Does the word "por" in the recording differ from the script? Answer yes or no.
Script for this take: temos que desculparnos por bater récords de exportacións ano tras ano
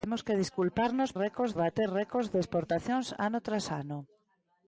yes